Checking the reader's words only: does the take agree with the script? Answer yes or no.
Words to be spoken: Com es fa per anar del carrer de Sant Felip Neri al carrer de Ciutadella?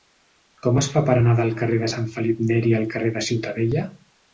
yes